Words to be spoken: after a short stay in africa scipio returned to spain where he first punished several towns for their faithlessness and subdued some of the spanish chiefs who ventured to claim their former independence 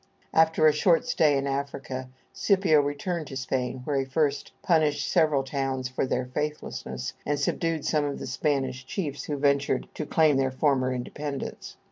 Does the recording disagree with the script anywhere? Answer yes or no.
no